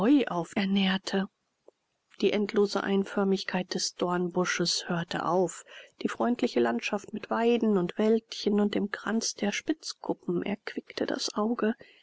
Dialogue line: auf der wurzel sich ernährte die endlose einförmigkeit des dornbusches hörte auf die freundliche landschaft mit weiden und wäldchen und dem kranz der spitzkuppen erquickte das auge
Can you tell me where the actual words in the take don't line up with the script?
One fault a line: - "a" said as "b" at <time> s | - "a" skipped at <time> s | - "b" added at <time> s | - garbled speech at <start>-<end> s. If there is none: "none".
- "der wurzel sich" skipped at 0.6 s